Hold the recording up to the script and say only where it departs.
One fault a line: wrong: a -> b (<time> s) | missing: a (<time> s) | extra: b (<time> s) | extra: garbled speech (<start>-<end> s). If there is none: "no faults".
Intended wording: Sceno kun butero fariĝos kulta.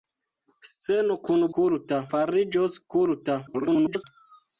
wrong: butero -> kulta (1.6 s)
extra: garbled speech (3.5-4.0 s)